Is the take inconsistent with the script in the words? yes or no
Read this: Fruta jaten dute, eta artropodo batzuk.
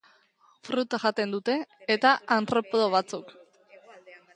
no